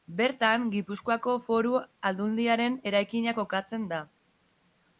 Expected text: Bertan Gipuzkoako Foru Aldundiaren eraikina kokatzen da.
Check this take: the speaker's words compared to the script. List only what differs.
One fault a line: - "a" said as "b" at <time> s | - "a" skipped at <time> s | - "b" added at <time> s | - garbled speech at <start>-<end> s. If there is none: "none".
none